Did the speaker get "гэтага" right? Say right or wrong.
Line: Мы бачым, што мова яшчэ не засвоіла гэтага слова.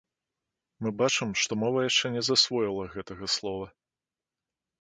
right